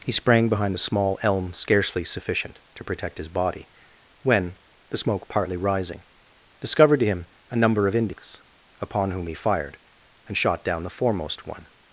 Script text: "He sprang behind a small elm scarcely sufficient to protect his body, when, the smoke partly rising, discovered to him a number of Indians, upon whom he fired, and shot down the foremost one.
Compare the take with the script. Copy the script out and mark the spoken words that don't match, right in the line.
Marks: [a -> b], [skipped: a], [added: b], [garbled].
"He sprang behind a small elm scarcely sufficient to protect his body, when, the smoke partly rising, discovered to him a number of Indians, upon whom he fired, and shot down the foremost one.